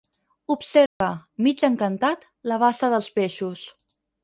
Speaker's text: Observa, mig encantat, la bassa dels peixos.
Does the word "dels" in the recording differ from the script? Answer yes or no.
no